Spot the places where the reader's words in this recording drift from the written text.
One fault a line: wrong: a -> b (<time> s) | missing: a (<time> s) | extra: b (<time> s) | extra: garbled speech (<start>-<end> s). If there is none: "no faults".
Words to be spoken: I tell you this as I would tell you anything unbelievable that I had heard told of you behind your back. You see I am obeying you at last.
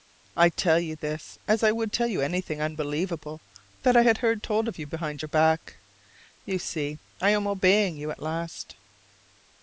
no faults